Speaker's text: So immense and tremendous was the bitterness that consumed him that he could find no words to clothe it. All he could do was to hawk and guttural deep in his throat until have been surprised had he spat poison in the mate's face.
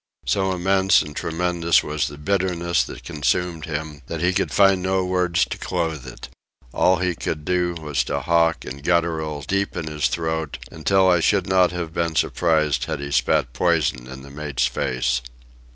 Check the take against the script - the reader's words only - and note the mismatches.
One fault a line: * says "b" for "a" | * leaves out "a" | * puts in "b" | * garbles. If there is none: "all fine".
* puts in "I should not"